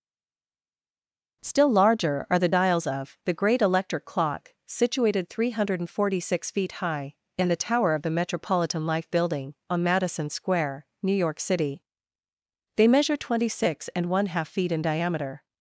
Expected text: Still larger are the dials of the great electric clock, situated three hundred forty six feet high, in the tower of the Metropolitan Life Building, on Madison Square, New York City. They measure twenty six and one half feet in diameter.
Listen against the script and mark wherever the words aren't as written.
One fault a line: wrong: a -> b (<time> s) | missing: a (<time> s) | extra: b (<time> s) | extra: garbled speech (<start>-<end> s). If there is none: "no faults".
no faults